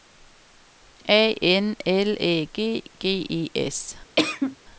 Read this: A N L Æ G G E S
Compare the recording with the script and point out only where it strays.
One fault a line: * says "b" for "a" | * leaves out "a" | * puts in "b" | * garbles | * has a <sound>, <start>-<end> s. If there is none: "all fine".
* has a cough, 4.2-4.6 s